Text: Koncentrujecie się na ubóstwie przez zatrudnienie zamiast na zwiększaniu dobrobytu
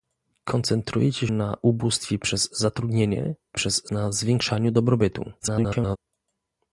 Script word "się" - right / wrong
wrong